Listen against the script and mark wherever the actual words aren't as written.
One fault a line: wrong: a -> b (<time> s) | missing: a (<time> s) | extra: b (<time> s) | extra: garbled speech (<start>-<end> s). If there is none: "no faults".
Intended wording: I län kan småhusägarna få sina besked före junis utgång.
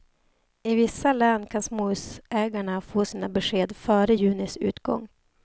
extra: vissa (0.8 s)